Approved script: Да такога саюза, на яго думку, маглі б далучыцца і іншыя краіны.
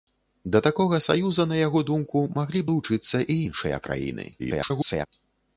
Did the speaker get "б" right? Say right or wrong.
wrong